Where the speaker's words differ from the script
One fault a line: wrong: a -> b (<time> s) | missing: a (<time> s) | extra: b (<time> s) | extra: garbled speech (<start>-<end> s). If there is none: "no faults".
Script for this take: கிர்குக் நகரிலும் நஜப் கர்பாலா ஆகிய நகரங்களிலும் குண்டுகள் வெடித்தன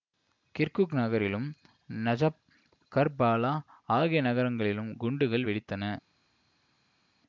no faults